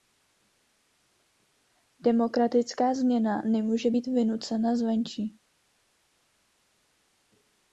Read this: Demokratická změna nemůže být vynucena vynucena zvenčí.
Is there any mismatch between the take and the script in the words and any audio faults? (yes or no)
yes